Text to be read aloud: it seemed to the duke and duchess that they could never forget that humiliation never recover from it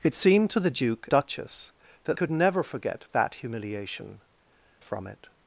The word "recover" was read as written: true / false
false